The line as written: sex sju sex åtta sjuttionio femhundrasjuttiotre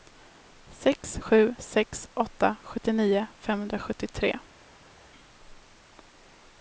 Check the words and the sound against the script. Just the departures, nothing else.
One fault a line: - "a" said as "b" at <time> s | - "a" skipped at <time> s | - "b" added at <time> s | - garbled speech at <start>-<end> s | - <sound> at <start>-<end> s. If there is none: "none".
none